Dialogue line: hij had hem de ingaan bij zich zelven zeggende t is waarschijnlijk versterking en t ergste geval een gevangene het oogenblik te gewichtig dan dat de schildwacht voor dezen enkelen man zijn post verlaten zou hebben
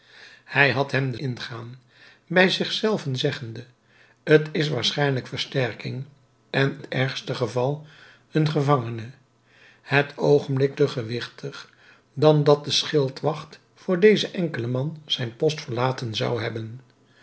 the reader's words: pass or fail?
pass